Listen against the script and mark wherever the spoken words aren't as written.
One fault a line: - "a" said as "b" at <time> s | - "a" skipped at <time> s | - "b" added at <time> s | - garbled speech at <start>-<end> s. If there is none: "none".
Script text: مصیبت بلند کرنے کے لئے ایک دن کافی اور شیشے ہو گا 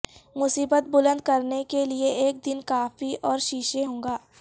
none